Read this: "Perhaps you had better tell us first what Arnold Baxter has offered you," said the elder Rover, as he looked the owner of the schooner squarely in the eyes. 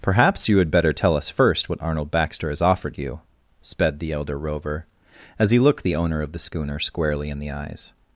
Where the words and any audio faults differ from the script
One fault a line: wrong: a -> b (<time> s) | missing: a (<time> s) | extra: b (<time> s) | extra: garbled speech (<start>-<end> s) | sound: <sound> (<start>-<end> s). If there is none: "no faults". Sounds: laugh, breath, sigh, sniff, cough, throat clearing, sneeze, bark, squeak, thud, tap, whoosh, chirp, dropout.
wrong: said -> sped (3.6 s)